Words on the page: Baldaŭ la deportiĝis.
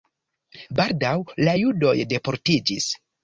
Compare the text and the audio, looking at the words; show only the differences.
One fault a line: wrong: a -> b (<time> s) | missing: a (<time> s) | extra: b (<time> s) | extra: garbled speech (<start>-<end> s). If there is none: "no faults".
extra: judoj (1.6 s)